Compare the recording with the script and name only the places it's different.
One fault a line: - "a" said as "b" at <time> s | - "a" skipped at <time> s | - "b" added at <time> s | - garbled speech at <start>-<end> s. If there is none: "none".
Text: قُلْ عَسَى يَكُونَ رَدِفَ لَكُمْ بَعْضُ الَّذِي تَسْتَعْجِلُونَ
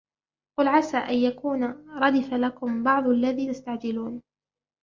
- "أَنْ" added at 1.0 s